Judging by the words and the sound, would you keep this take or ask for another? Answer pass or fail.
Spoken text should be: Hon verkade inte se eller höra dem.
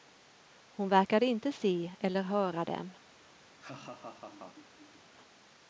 fail